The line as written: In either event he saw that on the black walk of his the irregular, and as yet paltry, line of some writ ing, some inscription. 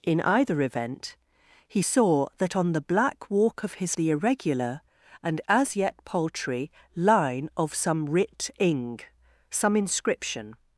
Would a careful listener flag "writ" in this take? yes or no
no